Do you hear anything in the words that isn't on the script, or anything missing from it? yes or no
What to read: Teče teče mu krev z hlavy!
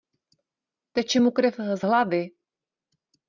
yes